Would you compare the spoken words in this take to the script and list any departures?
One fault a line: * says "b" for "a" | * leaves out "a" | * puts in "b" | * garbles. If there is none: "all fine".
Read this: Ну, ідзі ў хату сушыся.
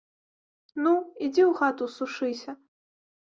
all fine